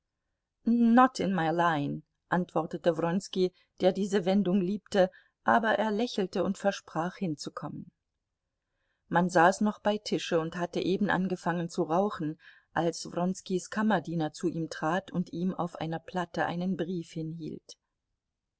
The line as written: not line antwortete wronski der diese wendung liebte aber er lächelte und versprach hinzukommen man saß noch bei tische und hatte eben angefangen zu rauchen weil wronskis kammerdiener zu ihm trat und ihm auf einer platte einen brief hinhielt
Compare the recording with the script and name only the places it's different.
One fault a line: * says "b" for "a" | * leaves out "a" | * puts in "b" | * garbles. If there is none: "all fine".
* puts in "in my"
* says "als" for "weil"